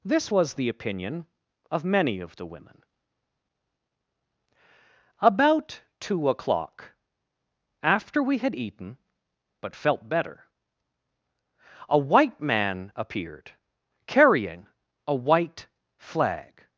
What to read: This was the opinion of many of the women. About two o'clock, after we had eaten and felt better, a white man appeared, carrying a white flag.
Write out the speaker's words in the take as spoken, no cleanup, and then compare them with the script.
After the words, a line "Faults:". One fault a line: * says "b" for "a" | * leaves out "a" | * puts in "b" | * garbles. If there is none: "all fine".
This was the opinion of many of the women. About two o'clock, after we had eaten but felt better, a white man appeared, carrying a white flag.
Faults:
* says "but" for "and"